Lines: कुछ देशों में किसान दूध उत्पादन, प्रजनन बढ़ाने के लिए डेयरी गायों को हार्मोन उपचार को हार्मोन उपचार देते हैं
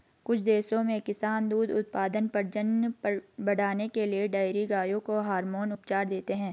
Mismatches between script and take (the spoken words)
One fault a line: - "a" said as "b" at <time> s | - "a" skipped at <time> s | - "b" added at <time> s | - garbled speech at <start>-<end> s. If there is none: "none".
- "को हार्मोन उपचार" skipped at 6.1 s